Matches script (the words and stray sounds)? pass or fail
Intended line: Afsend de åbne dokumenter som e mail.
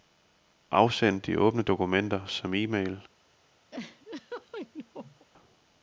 fail